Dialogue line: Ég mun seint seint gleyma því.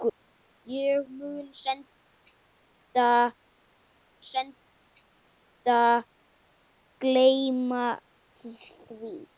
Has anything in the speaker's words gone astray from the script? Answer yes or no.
no